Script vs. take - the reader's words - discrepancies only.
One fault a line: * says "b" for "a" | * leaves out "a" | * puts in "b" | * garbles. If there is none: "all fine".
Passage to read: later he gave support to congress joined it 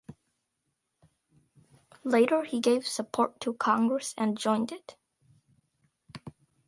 * puts in "and"